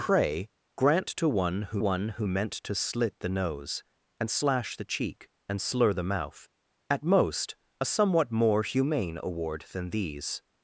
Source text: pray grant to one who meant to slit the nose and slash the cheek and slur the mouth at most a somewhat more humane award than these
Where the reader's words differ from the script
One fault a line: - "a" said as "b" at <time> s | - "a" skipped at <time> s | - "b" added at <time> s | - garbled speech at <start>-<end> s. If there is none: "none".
- "one who" added at 1.8 s